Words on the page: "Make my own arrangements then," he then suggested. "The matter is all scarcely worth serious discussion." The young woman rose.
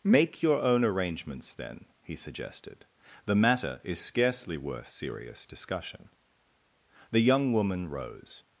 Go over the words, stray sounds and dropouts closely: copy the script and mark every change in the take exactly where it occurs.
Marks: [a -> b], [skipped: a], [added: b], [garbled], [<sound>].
"Make [my -> your] own arrangements then," he [skipped: then] suggested. "The matter is [skipped: all] scarcely worth serious discussion." The young woman rose.